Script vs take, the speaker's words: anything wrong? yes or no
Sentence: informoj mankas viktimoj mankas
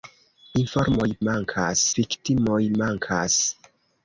no